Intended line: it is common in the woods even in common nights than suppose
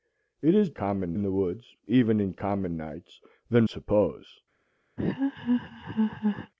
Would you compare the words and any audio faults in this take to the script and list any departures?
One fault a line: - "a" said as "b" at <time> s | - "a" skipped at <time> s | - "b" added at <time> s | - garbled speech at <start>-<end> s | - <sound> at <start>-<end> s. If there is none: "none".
- laugh at 5.0-6.5 s